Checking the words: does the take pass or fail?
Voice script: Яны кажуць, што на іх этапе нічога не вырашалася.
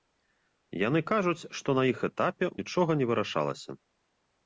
pass